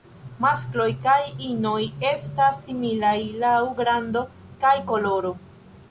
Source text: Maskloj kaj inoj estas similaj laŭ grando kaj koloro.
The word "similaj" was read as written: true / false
true